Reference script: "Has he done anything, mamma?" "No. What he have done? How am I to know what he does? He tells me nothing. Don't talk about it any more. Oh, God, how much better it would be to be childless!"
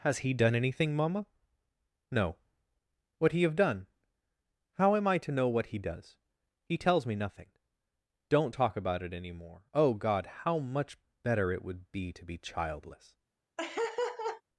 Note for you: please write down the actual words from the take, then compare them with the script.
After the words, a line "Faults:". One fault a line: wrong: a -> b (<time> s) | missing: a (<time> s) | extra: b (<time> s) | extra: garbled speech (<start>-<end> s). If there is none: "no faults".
"Has he done anything, mamma?" "No. What he have done? How am I to know what he does? He tells me nothing. Don't talk about it any more. Oh, God, how much better it would be to be childless!"
Faults:
no faults